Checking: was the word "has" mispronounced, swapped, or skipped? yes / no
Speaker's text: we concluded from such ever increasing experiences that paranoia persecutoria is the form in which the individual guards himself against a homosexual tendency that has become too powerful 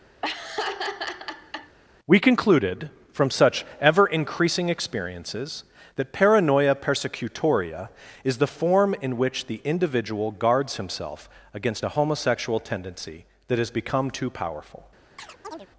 no